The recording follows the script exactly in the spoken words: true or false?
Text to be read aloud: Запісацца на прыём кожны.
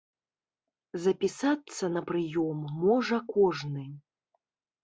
false